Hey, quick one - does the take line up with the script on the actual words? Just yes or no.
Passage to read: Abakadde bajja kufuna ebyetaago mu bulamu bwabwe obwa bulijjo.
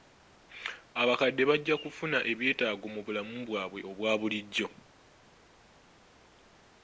yes